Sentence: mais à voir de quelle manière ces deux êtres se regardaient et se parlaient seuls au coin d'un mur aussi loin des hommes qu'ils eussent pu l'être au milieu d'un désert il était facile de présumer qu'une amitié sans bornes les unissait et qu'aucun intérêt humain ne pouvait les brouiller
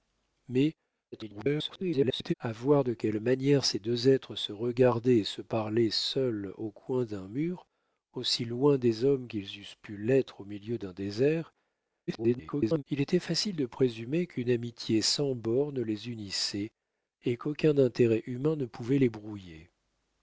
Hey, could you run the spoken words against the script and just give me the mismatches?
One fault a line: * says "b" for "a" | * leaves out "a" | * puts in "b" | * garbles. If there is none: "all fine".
* garbles
* garbles